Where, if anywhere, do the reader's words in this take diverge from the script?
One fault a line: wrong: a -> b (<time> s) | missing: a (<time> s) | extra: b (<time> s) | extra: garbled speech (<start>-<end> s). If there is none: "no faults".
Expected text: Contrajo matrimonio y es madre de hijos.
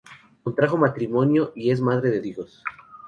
no faults